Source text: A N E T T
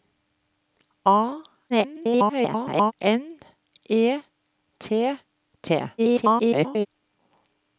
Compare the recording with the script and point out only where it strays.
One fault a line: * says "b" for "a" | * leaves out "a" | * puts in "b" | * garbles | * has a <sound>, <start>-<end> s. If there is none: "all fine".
* garbles
* garbles